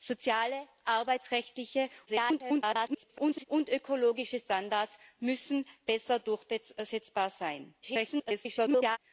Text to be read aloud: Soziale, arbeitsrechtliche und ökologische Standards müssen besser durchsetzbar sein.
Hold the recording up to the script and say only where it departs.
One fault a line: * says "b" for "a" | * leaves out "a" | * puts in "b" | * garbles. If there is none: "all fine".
* garbles
* garbles